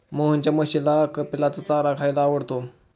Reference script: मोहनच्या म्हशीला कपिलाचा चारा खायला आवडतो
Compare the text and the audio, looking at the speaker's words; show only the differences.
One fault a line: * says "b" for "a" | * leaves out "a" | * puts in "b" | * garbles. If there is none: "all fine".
all fine